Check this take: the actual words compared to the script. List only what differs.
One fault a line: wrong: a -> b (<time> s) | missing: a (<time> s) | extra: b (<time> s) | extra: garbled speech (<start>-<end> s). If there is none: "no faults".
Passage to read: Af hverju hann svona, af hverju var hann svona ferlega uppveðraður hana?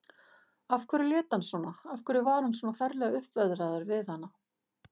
extra: lét (1.1 s)
extra: við (3.9 s)